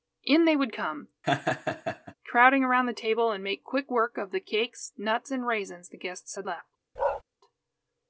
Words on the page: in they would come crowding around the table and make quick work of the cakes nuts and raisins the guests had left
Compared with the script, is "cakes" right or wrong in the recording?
right